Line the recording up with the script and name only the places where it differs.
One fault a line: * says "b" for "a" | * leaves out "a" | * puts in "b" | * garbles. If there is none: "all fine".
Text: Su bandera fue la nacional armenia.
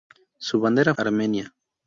* leaves out "fue la nacional"